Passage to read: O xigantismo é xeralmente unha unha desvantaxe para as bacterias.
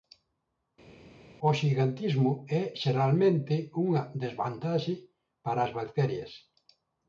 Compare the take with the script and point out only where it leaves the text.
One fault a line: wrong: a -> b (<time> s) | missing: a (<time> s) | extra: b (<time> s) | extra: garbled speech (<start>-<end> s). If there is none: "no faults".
missing: unha (4.0 s)